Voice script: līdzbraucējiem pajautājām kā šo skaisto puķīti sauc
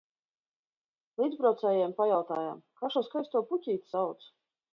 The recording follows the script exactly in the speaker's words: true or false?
true